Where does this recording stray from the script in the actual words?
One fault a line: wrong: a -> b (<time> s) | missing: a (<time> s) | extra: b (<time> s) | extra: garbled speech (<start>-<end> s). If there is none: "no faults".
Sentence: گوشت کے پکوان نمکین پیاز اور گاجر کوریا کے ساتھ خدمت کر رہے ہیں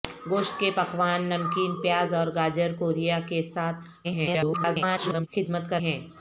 extra: garbled speech (4.0-5.3 s)
missing: رہے (5.8 s)